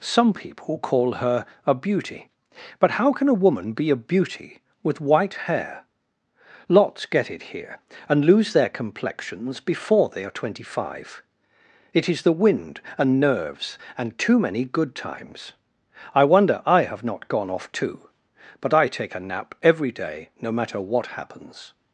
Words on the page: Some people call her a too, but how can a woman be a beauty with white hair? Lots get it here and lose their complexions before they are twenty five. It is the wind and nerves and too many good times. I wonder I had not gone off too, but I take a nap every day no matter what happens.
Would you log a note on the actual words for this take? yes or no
yes